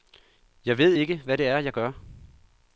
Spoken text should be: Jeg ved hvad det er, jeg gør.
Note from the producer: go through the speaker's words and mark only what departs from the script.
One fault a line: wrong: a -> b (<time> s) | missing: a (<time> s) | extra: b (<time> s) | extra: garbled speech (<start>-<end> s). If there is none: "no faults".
extra: ikke (0.9 s)